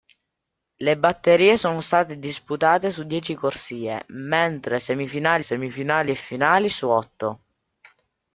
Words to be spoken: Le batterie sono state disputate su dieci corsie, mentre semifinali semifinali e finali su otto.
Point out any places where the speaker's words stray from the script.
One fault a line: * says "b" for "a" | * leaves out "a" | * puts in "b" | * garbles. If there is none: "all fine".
all fine